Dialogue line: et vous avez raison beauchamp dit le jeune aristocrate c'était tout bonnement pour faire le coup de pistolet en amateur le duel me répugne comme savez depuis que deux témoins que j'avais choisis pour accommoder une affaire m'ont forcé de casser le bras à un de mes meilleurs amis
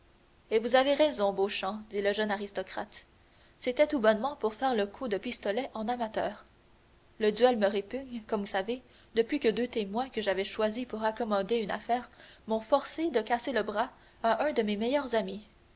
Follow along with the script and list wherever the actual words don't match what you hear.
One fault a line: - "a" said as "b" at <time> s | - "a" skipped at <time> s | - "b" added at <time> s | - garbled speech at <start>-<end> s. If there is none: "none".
none